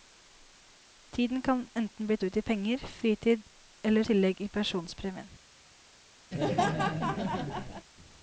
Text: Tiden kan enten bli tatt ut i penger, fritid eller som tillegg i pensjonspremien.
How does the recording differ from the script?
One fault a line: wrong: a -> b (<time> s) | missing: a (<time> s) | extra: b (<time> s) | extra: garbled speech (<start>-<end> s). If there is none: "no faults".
missing: tatt (2.2 s)
missing: som (4.0 s)